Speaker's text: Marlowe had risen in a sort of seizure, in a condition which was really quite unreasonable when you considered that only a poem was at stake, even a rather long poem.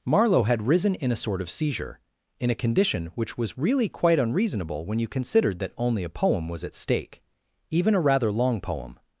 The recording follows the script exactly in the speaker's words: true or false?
true